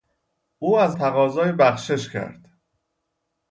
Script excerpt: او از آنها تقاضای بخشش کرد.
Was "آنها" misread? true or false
true